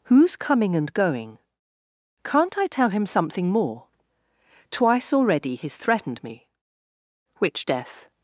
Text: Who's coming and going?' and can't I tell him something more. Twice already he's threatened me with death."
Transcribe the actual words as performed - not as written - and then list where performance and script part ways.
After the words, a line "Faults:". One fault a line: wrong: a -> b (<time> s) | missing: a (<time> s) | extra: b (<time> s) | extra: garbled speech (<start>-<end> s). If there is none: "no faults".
Who's coming and going?' can't I tell him something more. Twice already he's threatened me which death."
Faults:
missing: and (1.4 s)
wrong: with -> which (7.4 s)